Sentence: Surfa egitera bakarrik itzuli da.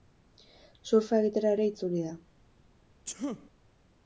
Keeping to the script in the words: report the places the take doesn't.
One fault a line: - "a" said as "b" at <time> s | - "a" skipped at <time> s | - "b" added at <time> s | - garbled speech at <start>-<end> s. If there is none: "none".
- "bakarrik" said as "ere" at 1.6 s